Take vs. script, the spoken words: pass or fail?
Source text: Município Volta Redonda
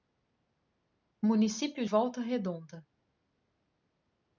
pass